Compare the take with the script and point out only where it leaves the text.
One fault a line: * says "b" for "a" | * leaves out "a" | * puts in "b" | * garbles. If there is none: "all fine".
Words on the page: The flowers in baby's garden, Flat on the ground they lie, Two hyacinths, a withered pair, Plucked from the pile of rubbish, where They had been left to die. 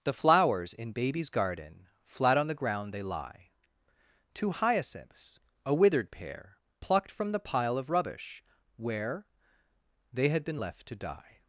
all fine